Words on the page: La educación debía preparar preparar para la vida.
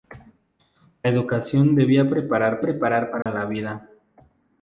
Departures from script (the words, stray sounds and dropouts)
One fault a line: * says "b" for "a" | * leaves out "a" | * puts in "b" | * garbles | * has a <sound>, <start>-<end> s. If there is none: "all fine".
* has a dropout, 3.2-3.3 s